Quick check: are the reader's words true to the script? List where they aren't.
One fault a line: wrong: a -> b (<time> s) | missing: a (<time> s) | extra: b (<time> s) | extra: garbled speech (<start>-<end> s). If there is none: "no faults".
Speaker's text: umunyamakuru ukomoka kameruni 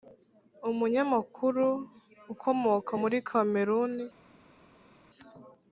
extra: muri (3.0 s)